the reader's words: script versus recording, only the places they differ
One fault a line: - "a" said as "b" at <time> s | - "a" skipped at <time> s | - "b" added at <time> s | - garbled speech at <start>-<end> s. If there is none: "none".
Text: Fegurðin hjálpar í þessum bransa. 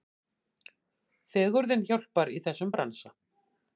none